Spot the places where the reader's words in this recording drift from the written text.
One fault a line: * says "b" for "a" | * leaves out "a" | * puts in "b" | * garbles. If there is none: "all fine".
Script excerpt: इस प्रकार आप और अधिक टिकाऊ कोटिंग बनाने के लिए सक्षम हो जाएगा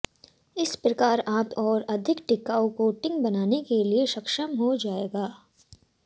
all fine